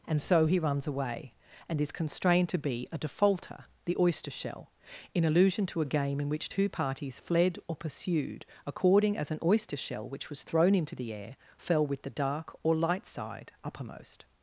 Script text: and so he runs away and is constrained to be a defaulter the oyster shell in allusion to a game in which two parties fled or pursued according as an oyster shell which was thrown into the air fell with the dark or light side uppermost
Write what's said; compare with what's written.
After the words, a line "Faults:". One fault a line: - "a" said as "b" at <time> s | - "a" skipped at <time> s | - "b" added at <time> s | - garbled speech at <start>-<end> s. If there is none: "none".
and so he runs away and is constrained to be a defaulter the oyster shell in allusion to a game in which two parties fled or pursued according as an oyster shell which was thrown into the air fell with the dark or light side uppermost
Faults:
none